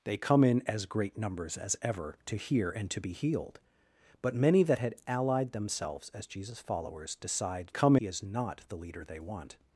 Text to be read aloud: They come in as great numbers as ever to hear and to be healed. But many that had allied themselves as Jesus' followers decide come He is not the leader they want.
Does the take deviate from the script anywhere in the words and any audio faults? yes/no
no